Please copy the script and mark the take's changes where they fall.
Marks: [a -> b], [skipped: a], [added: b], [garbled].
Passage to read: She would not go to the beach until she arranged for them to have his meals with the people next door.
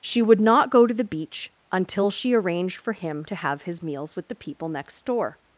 She would not go to the beach until she arranged for [them -> him] to have his meals with the people next door.